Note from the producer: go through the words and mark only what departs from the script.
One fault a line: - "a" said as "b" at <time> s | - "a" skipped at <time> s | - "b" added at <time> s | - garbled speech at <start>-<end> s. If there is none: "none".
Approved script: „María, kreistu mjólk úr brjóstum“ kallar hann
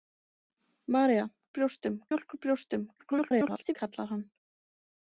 - "kreistu" said as "brjóstum" at 1.6 s
- garbled speech at 3.0-3.7 s